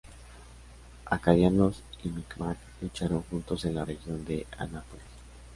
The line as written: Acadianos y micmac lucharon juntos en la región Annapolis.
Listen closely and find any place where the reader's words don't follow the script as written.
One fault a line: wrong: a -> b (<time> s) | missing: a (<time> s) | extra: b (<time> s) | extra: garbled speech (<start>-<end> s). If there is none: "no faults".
extra: de (4.2 s)